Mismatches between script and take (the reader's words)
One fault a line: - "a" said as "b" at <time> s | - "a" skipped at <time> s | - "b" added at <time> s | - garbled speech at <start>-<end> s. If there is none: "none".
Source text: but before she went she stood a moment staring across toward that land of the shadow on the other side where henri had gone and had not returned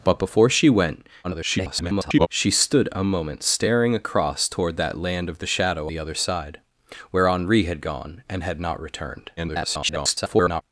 - garbled speech at 1.2-2.3 s
- "on" skipped at 5.9 s
- garbled speech at 9.4-10.6 s